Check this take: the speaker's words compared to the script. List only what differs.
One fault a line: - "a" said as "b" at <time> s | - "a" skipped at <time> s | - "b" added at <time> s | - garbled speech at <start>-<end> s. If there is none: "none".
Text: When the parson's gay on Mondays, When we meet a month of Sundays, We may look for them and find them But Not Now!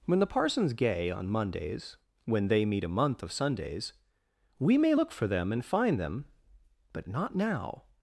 - "we" said as "they" at 2.5 s